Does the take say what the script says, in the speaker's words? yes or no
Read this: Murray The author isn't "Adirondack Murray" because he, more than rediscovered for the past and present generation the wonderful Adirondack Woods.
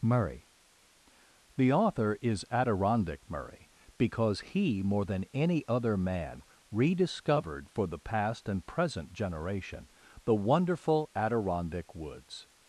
no